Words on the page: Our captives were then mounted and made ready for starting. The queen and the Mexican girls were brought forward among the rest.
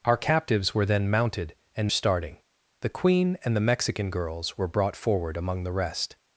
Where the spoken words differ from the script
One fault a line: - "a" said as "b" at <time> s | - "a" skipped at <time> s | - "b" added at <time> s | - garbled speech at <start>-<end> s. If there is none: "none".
- "made ready for" skipped at 1.9 s